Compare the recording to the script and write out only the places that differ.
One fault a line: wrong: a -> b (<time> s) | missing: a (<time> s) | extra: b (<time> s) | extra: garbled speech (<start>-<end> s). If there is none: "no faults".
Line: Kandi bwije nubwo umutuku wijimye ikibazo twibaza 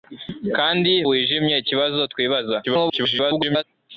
missing: bwije nubwo umutuku (0.9 s)
extra: garbled speech (2.6-3.6 s)